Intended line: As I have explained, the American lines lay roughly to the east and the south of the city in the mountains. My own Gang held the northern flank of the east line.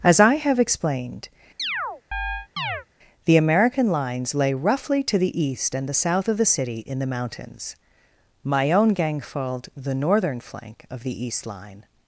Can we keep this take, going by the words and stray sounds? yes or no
no